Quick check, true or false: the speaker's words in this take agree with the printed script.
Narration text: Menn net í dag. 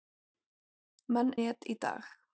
true